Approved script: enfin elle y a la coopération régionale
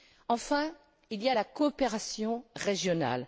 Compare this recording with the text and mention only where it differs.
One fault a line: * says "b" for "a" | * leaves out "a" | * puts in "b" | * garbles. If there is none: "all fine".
* says "il" for "elle"